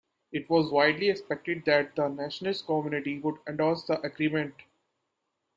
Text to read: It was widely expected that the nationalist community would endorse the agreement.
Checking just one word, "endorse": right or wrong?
right